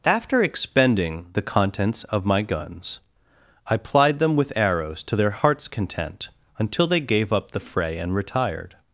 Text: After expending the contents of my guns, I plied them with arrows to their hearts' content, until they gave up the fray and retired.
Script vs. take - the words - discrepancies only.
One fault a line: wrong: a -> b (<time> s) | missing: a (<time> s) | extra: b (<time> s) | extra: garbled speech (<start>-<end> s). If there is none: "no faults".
no faults